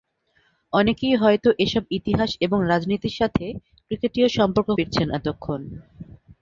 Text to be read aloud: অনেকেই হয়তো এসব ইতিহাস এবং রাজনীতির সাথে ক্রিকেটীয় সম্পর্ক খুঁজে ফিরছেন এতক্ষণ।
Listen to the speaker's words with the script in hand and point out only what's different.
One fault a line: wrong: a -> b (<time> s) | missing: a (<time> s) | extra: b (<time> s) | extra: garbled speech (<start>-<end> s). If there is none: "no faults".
missing: খুঁজে (4.7 s)